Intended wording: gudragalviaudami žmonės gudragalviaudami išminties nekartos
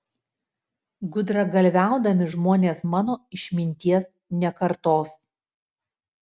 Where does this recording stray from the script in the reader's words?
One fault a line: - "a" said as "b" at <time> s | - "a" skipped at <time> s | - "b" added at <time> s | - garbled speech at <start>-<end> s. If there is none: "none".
- "gudragalviaudami" said as "mano" at 2.9 s